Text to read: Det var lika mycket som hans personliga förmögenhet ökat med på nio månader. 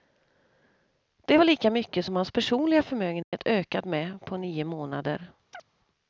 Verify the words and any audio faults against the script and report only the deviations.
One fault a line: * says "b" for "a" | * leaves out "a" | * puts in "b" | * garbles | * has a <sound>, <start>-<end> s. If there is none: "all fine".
* has a dropout, 3.2-3.3 s
* has a chirp, 5.5-5.6 s